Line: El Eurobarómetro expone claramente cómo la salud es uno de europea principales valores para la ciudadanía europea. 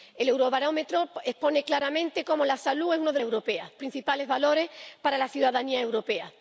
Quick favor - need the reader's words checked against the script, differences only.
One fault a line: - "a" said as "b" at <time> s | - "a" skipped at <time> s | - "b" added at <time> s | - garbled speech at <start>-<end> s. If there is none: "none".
none